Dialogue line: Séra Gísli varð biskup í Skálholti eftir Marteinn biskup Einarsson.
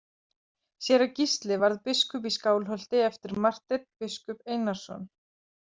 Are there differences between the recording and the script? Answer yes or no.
no